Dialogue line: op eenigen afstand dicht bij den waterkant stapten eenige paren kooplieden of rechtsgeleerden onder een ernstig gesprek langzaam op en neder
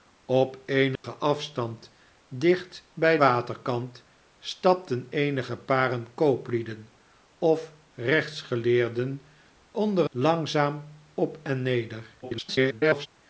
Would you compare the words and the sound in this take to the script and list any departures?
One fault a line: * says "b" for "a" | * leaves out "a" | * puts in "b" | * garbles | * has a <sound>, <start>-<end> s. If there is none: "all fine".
* has a dropout, 1.0-1.0 s
* leaves out "den"
* leaves out "een ernstig gesprek"
* garbles